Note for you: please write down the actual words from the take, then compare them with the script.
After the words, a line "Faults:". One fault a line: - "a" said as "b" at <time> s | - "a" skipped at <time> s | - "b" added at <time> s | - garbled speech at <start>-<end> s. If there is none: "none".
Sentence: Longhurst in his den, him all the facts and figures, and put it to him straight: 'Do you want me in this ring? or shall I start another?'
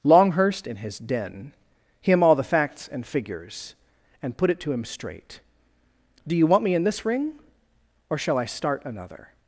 Longhurst in his den, him all the facts and figures, and put it to him straight: 'Do you want me in this ring? or shall I start another?'
Faults:
none